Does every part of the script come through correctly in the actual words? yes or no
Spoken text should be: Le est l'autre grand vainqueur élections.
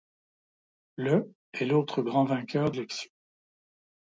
yes